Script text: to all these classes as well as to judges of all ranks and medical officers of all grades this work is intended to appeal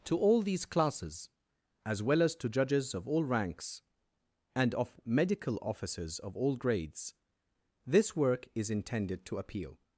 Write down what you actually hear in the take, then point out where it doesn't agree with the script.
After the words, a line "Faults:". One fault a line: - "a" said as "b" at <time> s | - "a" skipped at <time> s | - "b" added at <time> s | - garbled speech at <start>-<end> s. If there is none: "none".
to all these classes as well as to judges of all ranks and of medical officers of all grades this work is intended to appeal
Faults:
- "of" added at 4.8 s